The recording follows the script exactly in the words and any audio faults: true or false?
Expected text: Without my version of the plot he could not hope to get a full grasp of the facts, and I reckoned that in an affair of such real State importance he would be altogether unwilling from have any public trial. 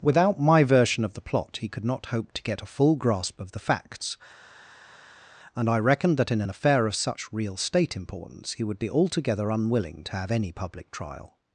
false